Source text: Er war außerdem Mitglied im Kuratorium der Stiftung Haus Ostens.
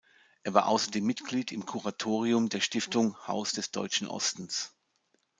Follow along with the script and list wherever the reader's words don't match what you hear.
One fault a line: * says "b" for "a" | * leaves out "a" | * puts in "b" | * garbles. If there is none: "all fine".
* puts in "des Deutschen"